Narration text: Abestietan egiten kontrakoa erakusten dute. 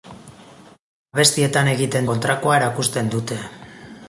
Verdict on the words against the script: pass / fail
pass